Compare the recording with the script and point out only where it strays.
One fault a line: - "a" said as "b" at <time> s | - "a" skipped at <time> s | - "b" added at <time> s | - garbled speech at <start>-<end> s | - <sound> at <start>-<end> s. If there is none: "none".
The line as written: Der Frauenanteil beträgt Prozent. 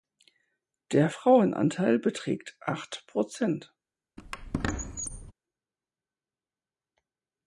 - "acht" added at 2.6 s
- squeak at 4.2-5.3 s